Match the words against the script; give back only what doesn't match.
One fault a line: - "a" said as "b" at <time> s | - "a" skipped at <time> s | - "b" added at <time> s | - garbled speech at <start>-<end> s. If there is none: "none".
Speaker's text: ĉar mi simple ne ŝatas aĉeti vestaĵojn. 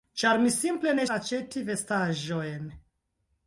- "ŝatas" skipped at 1.0 s